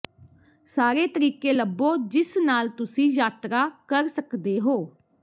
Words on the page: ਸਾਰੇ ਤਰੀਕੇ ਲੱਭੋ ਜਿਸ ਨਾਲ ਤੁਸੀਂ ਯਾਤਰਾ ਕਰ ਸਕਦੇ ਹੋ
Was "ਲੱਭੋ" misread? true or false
false